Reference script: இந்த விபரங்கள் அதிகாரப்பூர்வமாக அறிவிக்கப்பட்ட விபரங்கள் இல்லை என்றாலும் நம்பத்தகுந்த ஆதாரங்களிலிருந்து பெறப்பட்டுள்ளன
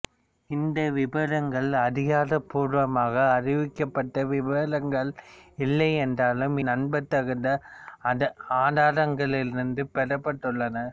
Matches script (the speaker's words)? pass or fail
pass